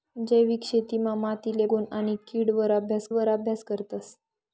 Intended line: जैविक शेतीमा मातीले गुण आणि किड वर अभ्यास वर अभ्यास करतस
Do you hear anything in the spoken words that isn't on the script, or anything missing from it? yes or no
no